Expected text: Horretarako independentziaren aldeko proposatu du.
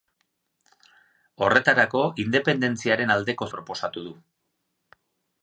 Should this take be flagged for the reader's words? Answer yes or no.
no